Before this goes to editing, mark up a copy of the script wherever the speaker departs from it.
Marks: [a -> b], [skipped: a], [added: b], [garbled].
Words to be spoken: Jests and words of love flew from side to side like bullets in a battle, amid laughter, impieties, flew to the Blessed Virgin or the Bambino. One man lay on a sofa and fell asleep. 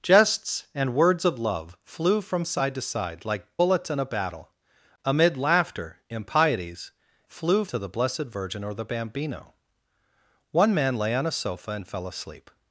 Jests and words of love flew from side to side like bullets in a battle, amid laughter, impieties, flew to the Blessed Virgin or the Bambino. One man lay on a sofa and fell asleep.